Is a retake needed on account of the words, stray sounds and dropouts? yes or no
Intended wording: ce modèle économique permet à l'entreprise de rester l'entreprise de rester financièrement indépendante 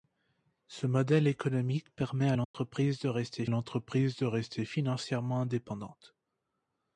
yes